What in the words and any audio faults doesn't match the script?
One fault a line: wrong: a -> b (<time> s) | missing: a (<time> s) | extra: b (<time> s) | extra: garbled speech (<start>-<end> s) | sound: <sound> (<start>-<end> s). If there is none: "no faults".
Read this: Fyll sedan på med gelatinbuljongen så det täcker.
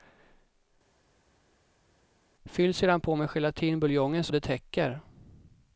no faults